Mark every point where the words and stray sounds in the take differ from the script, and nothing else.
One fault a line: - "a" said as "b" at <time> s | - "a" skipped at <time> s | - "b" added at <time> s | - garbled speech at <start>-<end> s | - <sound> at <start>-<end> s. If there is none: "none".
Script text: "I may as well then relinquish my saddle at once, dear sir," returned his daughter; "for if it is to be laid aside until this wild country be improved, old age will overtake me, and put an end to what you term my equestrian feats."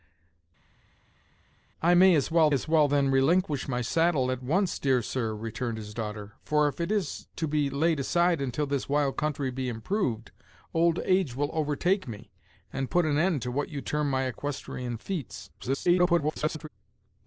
- "as well" added at 2.5 s
- garbled speech at 15.6-16.7 s